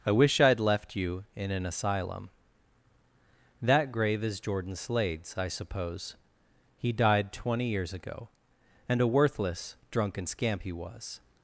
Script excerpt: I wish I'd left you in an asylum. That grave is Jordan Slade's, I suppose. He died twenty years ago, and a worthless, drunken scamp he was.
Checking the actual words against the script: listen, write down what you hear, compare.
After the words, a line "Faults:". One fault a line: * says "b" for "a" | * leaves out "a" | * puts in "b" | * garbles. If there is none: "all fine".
I wish I'd left you in an asylum. That grave is Jordan Slade's, I suppose. He died twenty years ago, and a worthless, drunken scamp he was.
Faults:
all fine